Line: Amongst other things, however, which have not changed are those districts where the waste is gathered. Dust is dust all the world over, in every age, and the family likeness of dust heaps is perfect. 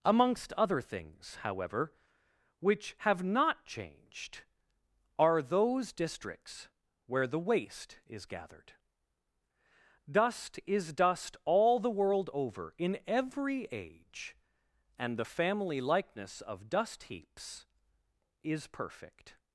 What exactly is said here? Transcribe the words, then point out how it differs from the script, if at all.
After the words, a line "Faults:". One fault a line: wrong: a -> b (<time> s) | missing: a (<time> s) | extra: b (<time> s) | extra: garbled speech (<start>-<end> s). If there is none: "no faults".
Amongst other things, however, which have not changed are those districts where the waste is gathered. Dust is dust all the world over, in every age, and the family likeness of dust heaps is perfect.
Faults:
no faults